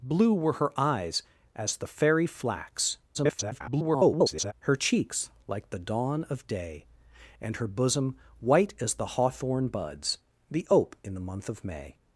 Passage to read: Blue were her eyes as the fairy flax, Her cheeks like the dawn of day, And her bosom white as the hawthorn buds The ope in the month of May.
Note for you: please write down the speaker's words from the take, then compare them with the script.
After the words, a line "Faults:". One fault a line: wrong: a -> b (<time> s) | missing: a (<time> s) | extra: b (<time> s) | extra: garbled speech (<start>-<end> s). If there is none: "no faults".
Blue were her eyes as the fairy flax, [garbled] Her cheeks like the dawn of day, And her bosom white as the hawthorn buds The ope in the month of May.
Faults:
extra: garbled speech (3.1-4.5 s)